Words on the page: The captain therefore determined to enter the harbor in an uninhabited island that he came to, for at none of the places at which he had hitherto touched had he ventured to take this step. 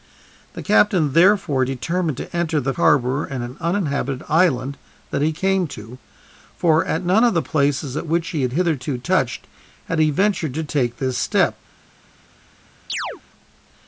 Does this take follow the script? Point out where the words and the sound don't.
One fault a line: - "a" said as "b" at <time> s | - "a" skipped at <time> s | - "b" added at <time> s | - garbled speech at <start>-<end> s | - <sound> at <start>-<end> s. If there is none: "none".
- chirp at 12.9-13.2 s